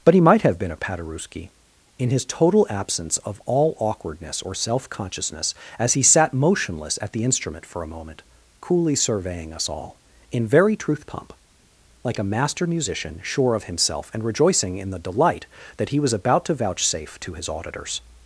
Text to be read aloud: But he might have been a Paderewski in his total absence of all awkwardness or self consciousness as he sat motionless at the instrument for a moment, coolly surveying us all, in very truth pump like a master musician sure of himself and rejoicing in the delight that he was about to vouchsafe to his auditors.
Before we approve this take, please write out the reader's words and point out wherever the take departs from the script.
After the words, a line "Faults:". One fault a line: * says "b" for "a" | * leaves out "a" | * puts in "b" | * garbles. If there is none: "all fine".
But he might have been a Paderewski in his total absence of all awkwardness or self consciousness as he sat motionless at the instrument for a moment, coolly surveying us all, in very truth pump like a master musician sure of himself and rejoicing in the delight that he was about to vouchsafe to his auditors.
Faults:
all fine